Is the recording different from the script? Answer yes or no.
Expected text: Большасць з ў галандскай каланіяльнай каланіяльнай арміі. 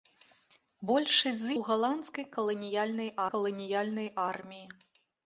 no